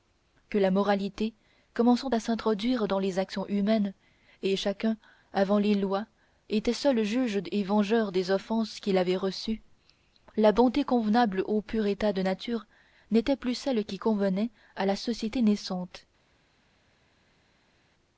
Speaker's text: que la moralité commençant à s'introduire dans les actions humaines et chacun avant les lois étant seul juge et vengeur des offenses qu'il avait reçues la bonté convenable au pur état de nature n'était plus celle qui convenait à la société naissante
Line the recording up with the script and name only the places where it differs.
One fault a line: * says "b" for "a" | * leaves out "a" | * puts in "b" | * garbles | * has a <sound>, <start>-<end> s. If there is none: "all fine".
all fine